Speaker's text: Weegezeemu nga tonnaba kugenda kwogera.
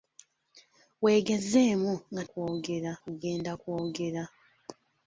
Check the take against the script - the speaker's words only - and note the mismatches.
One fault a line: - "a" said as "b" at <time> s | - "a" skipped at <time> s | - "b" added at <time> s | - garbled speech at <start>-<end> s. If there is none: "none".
- "tonnaba" said as "kwogera" at 2.3 s